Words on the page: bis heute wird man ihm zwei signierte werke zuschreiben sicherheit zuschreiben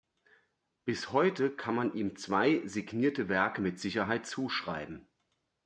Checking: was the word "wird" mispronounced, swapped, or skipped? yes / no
yes